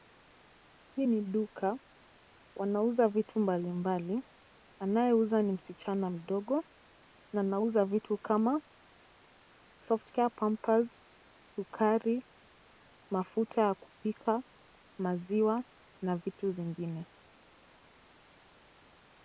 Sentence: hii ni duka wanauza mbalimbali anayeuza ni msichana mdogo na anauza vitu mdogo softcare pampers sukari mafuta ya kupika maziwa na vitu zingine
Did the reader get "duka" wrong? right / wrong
right